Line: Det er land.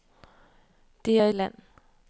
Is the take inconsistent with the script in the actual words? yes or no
no